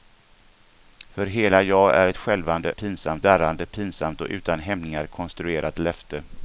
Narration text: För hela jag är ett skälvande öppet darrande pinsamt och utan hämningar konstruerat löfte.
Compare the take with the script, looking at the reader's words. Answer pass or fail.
fail